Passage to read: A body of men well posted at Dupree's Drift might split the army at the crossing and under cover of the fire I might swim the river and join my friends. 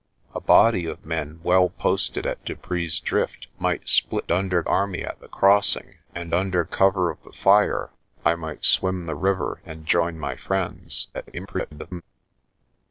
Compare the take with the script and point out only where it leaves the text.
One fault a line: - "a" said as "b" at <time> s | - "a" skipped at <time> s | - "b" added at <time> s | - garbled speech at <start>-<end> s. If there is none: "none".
- "the" said as "under" at 4.3 s
- garbled speech at 11.1-12.0 s